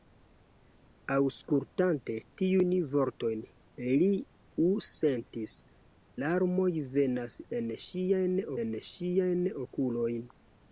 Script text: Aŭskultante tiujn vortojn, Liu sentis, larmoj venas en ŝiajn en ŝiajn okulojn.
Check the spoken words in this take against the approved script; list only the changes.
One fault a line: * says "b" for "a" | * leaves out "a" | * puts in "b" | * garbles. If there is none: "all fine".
all fine